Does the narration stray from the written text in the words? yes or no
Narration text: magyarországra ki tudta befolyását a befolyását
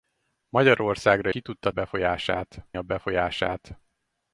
no